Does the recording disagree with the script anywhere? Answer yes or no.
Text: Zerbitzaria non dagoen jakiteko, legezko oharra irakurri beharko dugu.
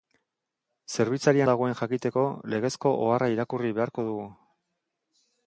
yes